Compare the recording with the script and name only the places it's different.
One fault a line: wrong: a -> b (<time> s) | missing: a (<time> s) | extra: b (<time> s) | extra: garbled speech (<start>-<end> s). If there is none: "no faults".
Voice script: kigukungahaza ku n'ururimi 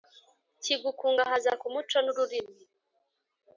extra: muco (1.7 s)